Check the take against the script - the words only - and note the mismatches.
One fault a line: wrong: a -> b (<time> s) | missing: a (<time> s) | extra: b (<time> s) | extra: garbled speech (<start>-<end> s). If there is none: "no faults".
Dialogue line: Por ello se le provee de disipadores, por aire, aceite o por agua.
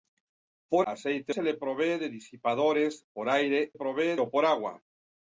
wrong: ello -> aceite (0.9 s)
wrong: aceite -> provee (3.7 s)